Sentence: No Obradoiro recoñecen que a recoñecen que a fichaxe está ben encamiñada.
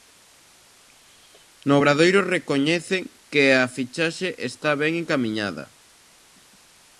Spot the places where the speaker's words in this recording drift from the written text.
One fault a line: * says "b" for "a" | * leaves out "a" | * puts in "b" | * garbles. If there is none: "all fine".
* leaves out "recoñecen que a"